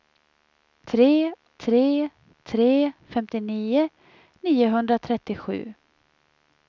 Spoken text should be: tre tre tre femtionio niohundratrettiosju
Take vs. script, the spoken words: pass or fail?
pass